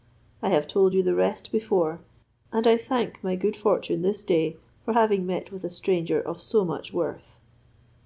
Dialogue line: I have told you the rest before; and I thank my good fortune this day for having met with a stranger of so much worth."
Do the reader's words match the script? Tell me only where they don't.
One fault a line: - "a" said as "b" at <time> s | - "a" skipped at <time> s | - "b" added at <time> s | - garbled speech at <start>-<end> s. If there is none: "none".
none